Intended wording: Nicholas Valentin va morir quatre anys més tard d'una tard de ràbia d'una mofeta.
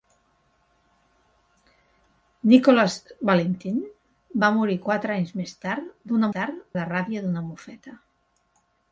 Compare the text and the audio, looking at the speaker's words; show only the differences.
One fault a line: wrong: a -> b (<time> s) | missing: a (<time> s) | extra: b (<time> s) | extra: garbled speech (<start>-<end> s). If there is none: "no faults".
no faults